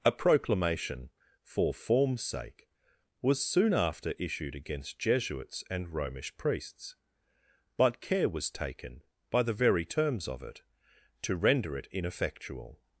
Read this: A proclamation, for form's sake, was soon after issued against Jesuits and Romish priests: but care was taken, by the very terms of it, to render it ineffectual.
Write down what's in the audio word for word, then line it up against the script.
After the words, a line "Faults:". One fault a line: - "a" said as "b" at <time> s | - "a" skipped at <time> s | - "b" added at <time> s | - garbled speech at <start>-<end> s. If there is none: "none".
A proclamation, for form's sake, was soon after issued against Jesuits and Romish priests: but care was taken, by the very terms of it, to render it ineffectual.
Faults:
none